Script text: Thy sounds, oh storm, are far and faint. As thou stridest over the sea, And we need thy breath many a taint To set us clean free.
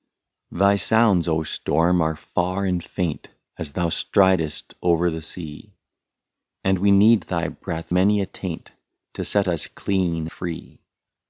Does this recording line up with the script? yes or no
yes